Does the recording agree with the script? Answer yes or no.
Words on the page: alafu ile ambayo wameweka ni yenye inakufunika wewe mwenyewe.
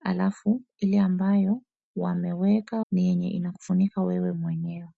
yes